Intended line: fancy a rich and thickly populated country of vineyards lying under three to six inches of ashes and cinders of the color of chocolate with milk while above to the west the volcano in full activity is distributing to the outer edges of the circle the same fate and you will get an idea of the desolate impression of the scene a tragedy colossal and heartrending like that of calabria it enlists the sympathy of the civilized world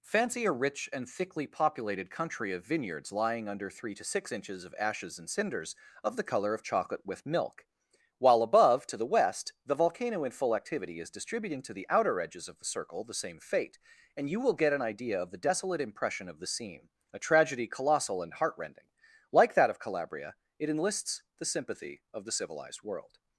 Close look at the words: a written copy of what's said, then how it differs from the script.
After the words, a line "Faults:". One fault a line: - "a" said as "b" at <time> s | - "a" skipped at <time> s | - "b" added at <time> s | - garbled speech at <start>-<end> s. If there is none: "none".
fancy a rich and thickly populated country of vineyards lying under three to six inches of ashes and cinders of the color of chocolate with milk while above to the west the volcano in full activity is distributing to the outer edges of the circle the same fate and you will get an idea of the desolate impression of the scene a tragedy colossal and heartrending like that of calabria it enlists the sympathy of the civilized world
Faults:
none